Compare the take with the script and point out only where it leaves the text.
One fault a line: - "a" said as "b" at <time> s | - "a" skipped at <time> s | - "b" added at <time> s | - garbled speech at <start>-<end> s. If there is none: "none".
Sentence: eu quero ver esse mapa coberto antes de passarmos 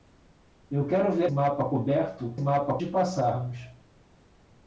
- "esse" skipped at 1.3 s
- "antes" said as "mapa" at 2.4 s